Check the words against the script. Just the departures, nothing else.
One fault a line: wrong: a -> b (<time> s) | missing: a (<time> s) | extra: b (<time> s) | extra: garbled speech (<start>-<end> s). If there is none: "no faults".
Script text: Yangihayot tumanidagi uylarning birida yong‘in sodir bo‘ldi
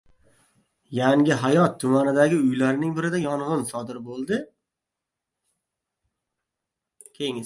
no faults